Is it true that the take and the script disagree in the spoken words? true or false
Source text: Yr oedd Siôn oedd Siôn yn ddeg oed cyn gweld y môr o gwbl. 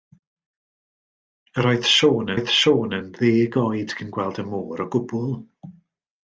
false